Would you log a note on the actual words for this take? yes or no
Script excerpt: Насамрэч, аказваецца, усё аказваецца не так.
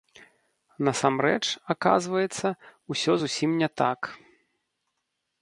yes